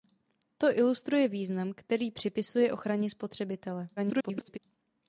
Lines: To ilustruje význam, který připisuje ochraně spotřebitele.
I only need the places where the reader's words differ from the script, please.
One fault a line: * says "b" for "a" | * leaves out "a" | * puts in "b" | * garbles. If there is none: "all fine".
* garbles